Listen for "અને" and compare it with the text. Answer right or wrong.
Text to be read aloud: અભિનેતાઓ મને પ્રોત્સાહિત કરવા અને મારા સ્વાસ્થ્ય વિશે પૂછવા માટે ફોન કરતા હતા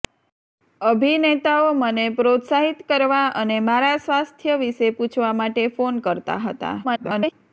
right